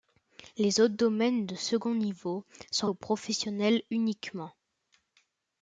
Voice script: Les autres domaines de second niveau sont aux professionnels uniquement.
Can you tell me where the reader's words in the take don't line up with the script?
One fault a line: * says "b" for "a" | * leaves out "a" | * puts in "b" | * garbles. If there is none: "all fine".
all fine